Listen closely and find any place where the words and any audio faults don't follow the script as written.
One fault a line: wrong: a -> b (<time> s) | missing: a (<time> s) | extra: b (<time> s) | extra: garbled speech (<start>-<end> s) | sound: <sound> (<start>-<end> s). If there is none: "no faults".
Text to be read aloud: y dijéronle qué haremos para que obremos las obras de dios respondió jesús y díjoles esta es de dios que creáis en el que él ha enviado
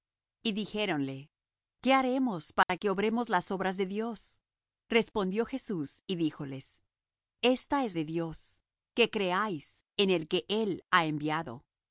sound: dropout (2.6-2.7 s)